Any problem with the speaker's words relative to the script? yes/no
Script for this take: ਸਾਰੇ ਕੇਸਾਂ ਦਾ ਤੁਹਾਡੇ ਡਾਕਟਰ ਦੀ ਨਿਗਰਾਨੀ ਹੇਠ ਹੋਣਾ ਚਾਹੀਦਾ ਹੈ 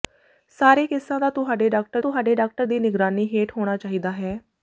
yes